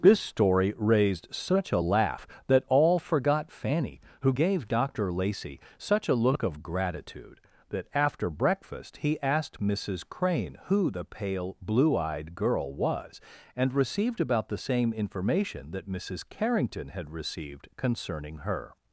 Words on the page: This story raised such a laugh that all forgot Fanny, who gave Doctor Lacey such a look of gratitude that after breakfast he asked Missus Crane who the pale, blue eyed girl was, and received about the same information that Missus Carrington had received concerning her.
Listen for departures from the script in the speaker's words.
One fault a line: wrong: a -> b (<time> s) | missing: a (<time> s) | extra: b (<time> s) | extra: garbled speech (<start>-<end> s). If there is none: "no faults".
no faults